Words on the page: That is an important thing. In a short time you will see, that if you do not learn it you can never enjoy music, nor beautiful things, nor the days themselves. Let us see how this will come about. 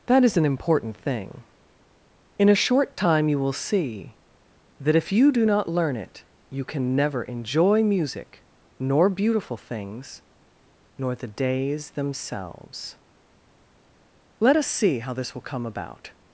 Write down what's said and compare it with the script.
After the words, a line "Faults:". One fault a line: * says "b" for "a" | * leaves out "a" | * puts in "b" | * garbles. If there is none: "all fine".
That is an important thing. In a short time you will see, that if you do not learn it you can never enjoy music, nor beautiful things, nor the days themselves. Let us see how this will come about.
Faults:
all fine